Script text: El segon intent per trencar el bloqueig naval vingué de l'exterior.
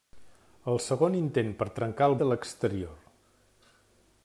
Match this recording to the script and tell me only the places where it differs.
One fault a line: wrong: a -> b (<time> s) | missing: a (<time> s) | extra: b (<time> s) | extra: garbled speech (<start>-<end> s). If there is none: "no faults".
missing: bloqueig naval vingué (2.2 s)